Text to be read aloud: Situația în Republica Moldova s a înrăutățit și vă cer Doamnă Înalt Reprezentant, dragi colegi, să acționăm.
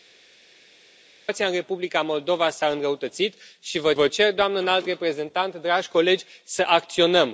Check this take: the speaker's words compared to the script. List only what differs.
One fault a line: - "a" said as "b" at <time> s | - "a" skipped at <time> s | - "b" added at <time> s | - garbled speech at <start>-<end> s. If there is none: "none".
- "vă" added at 3.9 s